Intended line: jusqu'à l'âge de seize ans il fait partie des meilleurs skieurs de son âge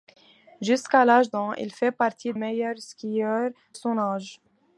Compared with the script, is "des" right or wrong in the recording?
wrong